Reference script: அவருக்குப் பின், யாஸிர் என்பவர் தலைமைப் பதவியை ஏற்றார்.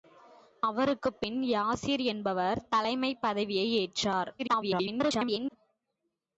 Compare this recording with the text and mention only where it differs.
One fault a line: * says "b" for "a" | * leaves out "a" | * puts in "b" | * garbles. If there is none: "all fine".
* garbles